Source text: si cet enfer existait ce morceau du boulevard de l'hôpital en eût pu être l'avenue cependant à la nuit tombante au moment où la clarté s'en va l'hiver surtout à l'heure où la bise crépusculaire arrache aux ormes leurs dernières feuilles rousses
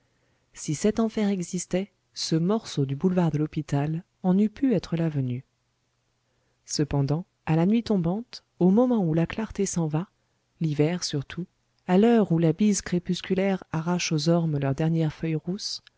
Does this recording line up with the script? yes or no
yes